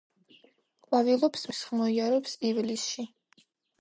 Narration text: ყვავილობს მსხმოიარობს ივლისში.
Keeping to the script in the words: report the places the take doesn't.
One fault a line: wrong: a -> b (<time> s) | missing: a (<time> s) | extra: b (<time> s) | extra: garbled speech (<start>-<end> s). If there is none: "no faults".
no faults